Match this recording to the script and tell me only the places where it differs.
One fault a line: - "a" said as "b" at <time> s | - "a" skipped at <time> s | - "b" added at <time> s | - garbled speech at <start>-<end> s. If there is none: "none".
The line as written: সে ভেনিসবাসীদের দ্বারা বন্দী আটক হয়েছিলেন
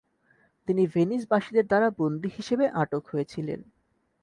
- "সে" said as "তিনি" at 0.7 s
- "হিসেবে" added at 2.4 s